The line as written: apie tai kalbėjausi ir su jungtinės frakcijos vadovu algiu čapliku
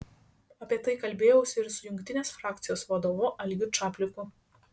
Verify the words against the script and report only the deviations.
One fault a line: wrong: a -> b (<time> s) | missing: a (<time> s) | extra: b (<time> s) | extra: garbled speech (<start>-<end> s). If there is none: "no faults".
no faults